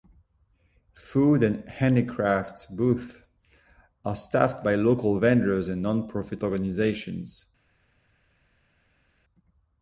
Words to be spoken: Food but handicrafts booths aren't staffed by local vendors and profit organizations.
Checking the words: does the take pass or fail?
fail